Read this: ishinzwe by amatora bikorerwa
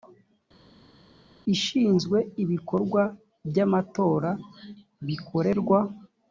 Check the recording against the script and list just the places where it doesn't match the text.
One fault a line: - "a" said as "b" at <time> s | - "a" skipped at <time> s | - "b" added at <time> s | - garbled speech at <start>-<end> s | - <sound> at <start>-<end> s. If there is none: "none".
- "ibikorwa" added at 2.4 s